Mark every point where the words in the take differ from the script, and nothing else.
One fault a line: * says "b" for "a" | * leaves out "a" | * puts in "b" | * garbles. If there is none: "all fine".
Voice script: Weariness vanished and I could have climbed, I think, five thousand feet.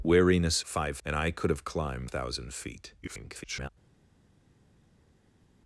* says "five" for "vanished"
* leaves out "I think five"
* garbles